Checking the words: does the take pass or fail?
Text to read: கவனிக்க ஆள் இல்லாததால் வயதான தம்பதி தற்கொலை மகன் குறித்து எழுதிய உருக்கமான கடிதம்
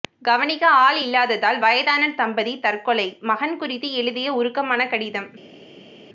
pass